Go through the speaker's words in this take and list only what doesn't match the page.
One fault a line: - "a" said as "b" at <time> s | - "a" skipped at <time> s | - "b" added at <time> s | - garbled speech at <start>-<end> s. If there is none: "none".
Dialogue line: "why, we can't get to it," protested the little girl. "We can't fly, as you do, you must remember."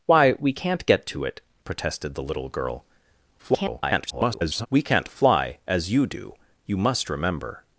- garbled speech at 3.4-4.7 s